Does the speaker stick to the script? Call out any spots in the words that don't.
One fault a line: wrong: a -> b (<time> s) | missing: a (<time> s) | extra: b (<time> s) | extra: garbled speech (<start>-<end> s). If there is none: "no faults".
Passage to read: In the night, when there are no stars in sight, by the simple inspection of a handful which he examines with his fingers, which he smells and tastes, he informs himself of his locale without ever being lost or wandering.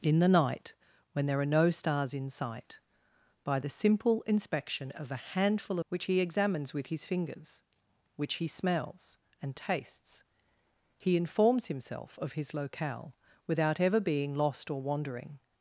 no faults